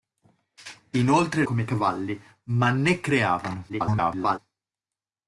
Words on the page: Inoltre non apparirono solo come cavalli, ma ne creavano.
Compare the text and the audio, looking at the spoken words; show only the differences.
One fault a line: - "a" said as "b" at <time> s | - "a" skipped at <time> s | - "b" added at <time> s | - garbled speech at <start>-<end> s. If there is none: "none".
- "non apparirono solo" skipped at 1.4 s
- garbled speech at 3.7-4.4 s